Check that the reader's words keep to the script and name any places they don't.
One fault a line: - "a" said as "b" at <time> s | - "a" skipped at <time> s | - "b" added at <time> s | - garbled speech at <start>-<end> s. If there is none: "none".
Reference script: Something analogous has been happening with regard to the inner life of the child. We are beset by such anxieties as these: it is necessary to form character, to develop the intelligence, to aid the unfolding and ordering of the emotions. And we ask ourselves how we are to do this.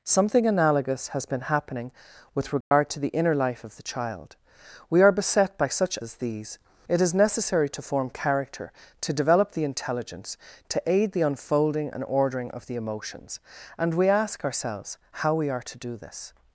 - "anxieties" skipped at 6.0 s